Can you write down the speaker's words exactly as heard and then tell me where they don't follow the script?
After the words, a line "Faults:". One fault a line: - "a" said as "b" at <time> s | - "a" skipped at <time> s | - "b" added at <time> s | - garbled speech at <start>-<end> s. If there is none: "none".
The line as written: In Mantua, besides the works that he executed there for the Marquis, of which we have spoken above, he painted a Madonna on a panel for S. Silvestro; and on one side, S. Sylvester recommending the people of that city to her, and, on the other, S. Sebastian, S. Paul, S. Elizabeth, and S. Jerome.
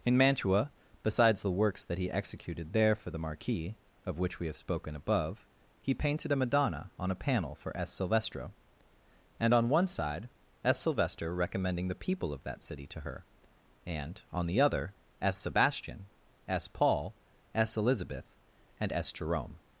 In Mantua, besides the works that he executed there for the Marquis, of which we have spoken above, he painted a Madonna on a panel for S. Silvestro; and on one side, S. Sylvester recommending the people of that city to her, and, on the other, S. Sebastian, S. Paul, S. Elizabeth, and S. Jerome.
Faults:
none